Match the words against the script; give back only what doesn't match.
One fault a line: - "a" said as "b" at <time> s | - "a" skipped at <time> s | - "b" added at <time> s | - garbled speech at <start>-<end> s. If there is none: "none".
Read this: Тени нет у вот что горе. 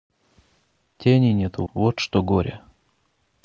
none